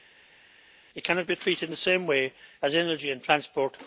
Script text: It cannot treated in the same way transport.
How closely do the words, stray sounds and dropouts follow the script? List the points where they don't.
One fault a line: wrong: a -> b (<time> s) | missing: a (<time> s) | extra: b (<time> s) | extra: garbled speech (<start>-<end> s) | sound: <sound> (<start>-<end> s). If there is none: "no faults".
extra: be (1.3 s)
extra: as energy and (2.6 s)